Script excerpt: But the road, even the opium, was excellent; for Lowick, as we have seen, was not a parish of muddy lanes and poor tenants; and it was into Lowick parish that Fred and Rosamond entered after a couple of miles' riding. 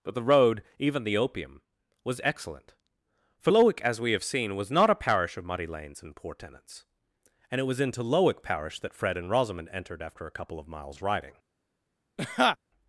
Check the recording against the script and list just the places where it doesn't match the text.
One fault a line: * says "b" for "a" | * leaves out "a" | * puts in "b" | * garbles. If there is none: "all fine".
all fine